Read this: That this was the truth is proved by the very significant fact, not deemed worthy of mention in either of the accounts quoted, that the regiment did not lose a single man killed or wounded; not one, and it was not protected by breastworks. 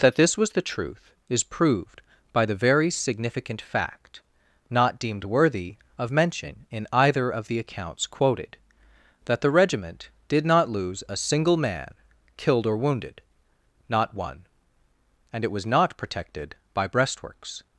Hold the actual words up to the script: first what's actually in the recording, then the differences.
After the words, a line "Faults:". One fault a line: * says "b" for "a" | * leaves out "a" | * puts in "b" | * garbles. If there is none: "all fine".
That this was the truth is proved by the very significant fact, not deemed worthy of mention in either of the accounts quoted, that the regiment did not lose a single man killed or wounded; not one, and it was not protected by breastworks.
Faults:
all fine